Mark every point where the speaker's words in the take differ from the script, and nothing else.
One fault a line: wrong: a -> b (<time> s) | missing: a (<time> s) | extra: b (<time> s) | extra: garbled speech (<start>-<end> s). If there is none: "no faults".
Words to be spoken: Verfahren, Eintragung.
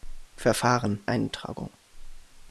no faults